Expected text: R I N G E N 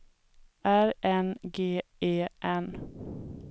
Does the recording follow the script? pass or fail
fail